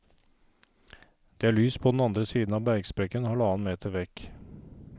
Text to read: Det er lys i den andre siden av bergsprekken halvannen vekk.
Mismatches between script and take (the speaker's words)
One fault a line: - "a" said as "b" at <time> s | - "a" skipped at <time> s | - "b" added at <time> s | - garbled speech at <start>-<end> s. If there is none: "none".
- "i" said as "på" at 1.8 s
- "meter" added at 3.7 s